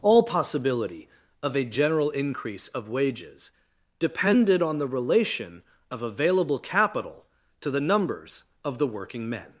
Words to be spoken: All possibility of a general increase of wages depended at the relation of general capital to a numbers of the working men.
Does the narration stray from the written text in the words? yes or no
yes